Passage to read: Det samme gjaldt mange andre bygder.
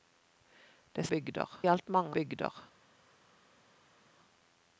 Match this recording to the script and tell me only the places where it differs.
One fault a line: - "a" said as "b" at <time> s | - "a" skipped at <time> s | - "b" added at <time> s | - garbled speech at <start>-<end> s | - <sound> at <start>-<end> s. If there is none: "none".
- "samme" said as "bygder" at 1.1 s
- "andre" skipped at 2.2 s